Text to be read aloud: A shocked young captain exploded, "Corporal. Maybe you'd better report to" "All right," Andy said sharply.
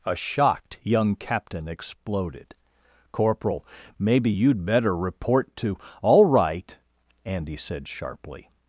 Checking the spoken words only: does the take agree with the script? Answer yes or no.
yes